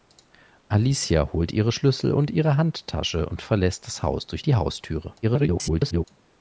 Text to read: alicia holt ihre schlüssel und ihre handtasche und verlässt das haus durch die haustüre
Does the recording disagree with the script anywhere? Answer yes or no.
yes